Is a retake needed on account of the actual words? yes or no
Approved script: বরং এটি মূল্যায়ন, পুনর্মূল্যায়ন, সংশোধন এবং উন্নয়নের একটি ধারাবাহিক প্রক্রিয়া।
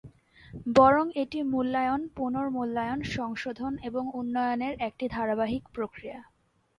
no